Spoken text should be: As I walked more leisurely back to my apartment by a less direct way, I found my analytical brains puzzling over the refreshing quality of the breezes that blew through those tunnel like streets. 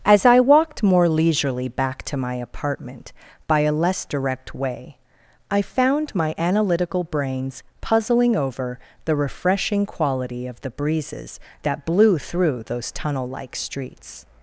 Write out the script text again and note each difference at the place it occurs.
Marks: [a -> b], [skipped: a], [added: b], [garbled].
As I walked more leisurely back to my apartment by a less direct way, I found my analytical brains puzzling over the refreshing quality of the breezes that blew through those tunnel like streets.